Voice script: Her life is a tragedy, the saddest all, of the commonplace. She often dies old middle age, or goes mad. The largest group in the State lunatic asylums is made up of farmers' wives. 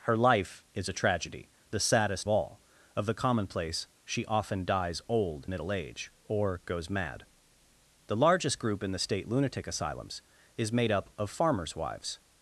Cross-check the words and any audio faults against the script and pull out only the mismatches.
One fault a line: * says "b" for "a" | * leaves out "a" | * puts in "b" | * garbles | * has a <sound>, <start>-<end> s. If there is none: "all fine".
all fine